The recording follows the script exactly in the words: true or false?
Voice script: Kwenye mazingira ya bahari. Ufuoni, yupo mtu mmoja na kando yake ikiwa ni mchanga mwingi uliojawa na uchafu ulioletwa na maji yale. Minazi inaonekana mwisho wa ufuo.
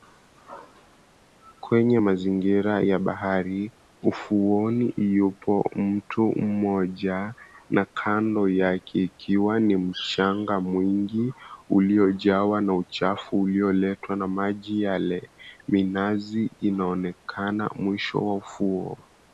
true